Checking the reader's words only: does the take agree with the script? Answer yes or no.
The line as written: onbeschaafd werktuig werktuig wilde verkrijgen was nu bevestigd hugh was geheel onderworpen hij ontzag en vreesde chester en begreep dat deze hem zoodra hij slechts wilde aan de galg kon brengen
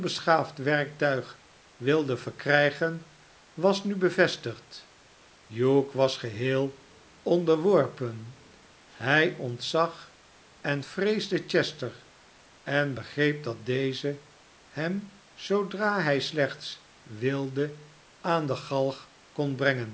no